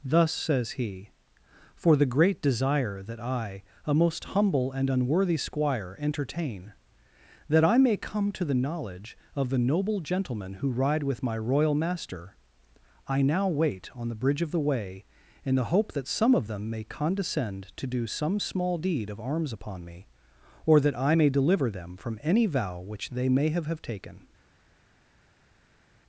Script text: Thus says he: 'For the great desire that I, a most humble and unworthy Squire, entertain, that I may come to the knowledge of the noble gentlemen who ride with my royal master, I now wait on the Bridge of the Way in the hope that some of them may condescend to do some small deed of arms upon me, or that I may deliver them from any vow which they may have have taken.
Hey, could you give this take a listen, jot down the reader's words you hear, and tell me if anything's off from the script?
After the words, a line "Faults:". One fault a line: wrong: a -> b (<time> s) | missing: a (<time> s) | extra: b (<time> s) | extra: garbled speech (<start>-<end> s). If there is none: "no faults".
Thus says he: 'For the great desire that I, a most humble and unworthy Squire, entertain, that I may come to the knowledge of the noble gentlemen who ride with my royal master, I now wait on the Bridge of the Way in the hope that some of them may condescend to do some small deed of arms upon me, or that I may deliver them from any vow which they may have have taken.
Faults:
no faults